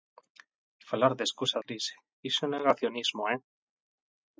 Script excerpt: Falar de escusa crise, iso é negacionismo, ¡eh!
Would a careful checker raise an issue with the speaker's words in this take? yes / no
no